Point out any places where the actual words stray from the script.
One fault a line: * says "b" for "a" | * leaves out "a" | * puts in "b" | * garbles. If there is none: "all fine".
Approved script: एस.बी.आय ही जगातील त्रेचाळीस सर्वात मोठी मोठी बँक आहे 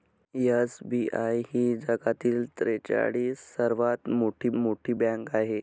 all fine